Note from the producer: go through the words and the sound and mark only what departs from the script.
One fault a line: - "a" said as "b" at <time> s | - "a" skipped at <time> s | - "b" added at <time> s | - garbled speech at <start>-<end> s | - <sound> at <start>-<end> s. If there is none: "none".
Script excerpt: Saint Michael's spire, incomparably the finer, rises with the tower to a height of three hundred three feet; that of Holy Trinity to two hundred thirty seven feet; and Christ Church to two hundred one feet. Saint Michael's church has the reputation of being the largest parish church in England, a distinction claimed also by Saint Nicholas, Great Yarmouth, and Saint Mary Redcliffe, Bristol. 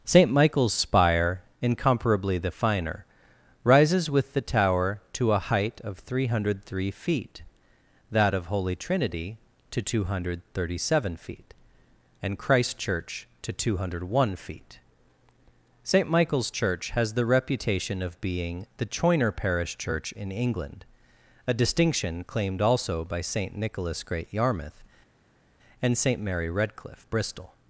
- "largest" said as "choiner" at 18.9 s